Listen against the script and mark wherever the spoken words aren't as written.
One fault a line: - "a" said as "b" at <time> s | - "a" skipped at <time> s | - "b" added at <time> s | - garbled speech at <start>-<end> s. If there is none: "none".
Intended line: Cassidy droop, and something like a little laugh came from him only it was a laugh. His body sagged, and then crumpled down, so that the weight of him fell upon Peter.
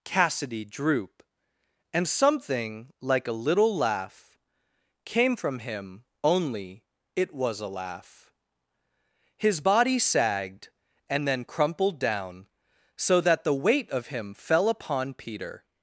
none